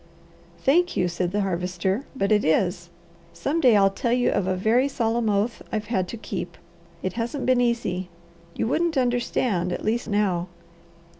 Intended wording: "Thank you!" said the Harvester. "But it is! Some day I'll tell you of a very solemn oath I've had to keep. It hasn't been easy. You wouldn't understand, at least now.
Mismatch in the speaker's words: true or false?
false